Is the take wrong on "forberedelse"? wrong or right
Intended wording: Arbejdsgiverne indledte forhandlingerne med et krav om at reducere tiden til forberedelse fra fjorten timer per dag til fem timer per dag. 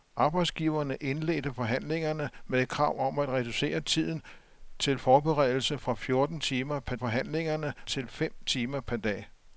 right